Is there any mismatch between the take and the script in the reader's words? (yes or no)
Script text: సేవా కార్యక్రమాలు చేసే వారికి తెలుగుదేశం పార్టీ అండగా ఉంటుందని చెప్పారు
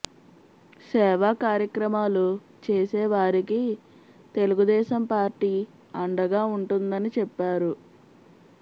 no